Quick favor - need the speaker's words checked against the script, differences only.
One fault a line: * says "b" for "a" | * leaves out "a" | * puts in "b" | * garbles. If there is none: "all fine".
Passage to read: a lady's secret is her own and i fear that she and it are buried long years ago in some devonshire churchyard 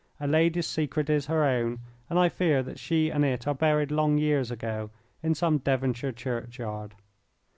all fine